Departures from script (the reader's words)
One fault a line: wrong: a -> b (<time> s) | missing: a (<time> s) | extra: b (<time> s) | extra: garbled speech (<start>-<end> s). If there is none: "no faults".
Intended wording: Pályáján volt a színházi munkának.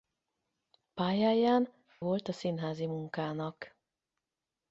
no faults